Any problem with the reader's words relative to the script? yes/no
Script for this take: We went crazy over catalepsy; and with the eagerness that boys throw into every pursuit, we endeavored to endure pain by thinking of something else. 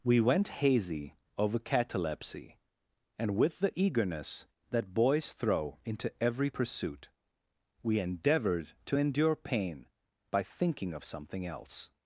yes